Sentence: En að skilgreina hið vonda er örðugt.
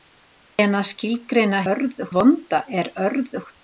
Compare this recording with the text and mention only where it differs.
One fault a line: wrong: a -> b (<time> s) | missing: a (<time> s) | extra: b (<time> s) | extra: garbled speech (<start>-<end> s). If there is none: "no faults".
wrong: hið -> örðugt (1.7 s)